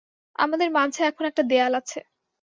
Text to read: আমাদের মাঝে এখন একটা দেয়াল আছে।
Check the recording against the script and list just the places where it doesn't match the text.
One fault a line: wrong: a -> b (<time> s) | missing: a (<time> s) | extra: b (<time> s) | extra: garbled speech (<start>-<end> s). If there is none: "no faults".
no faults